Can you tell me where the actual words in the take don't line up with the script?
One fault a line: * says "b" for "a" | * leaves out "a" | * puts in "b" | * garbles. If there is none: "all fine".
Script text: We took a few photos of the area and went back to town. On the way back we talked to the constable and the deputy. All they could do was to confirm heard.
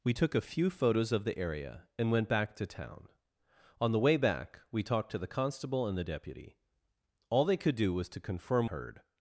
all fine